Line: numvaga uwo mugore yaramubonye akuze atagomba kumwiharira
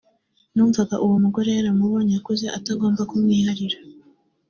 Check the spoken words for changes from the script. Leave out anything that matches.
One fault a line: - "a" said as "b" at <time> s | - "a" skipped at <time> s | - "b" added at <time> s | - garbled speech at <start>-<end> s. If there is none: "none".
none